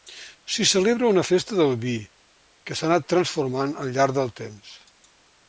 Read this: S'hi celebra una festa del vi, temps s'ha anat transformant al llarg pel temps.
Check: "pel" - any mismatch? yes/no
yes